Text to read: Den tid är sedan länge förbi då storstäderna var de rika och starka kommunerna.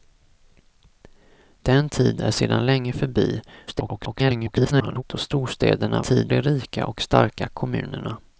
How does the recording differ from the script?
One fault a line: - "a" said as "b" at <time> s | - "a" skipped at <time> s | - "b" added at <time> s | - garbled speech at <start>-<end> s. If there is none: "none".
- garbled speech at 3.7-5.0 s
- "var" said as "tid" at 6.0 s